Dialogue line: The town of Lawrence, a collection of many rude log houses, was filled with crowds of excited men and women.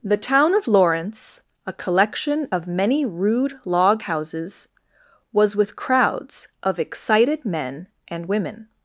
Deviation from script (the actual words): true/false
true